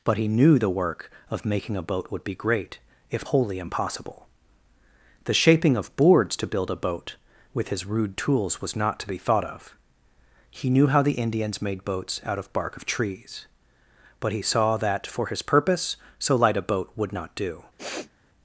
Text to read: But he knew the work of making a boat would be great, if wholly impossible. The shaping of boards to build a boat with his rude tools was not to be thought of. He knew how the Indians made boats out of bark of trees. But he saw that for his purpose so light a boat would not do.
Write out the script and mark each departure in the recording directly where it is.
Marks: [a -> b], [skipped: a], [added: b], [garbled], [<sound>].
But he knew the work of making a boat would be great, if wholly impossible. The shaping of boards to build a boat with his rude tools was not to be thought of. He knew how the Indians made boats out of bark of trees. But he saw that for his purpose so light a boat would not do. [sniff]